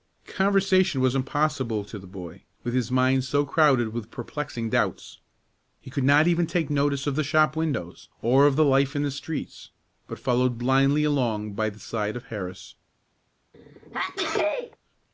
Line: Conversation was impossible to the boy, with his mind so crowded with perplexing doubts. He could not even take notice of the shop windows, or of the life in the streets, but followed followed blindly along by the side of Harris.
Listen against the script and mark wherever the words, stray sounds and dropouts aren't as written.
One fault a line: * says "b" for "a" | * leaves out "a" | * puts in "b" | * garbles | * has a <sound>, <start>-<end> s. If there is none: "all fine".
* leaves out "followed"
* has a sneeze, 13.5-14.8 s